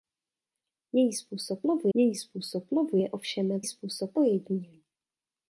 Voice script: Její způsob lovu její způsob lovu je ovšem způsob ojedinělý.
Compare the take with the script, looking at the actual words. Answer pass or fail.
pass